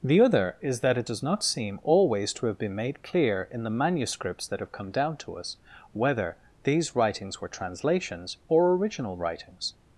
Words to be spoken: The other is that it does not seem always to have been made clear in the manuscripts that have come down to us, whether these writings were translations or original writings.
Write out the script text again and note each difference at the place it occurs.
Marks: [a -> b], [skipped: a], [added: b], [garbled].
The other is that it does not seem always to have been made clear in the manuscripts that have come down to us, whether these writings were translations or original writings.